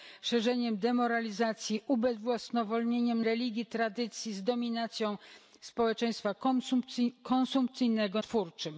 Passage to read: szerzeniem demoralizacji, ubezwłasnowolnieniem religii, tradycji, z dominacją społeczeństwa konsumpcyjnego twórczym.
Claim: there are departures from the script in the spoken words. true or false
false